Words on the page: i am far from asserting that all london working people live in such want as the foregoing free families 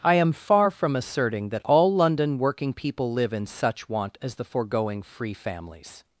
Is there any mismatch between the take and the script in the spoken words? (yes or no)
no